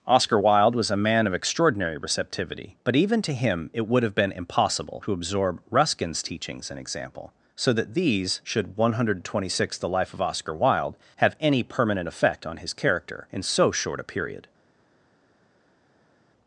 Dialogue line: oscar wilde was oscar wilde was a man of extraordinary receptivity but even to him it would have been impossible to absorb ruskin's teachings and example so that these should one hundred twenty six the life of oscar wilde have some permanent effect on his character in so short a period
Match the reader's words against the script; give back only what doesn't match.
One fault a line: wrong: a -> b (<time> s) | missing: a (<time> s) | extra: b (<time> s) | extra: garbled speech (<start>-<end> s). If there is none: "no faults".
missing: oscar wilde was (0.9 s)
wrong: some -> any (11.4 s)